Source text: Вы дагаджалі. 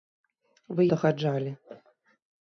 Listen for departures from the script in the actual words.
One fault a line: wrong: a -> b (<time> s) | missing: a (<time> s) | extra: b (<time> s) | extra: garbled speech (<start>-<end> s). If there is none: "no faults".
no faults